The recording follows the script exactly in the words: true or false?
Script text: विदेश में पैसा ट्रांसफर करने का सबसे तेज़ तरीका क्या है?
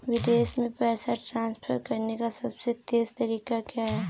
true